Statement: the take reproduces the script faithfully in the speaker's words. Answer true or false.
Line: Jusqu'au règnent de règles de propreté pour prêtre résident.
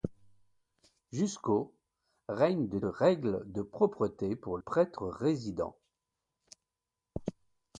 true